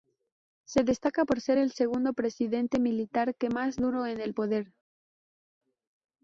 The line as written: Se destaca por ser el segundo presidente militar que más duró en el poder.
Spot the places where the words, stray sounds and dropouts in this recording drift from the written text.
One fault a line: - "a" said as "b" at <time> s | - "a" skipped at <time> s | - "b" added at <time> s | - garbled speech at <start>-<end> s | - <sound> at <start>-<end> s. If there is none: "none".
none